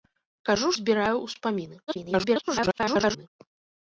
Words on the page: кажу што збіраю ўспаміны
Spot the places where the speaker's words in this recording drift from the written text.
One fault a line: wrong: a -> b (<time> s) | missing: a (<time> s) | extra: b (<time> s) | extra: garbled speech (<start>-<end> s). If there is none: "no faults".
missing: што (0.7 s)
extra: garbled speech (1.9-3.3 s)